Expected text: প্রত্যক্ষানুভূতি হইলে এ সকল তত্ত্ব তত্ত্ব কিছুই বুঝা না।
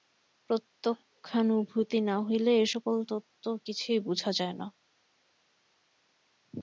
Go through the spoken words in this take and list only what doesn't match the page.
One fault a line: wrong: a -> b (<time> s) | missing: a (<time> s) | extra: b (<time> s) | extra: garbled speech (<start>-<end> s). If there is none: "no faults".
extra: না (2.0 s)
missing: তত্ত্ব (3.4 s)
extra: যায় (4.3 s)